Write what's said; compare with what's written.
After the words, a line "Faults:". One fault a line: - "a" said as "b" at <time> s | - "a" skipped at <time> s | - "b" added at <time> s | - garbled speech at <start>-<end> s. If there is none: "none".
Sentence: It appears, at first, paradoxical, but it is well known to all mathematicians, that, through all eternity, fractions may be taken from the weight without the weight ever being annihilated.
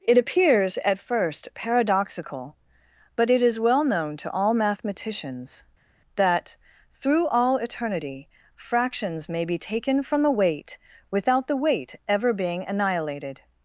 It appears, at first, paradoxical, but it is well known to all mathematicians, that, through all eternity, fractions may be taken from the weight without the weight ever being annihilated.
Faults:
none